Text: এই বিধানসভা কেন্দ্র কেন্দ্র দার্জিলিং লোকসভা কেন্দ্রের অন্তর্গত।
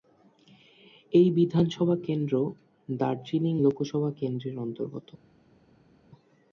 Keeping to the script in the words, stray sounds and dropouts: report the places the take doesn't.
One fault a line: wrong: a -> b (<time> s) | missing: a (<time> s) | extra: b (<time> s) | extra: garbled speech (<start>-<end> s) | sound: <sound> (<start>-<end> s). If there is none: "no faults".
missing: কেন্দ্র (2.3 s)